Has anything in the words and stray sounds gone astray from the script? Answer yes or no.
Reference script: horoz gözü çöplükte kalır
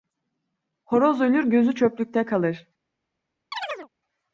yes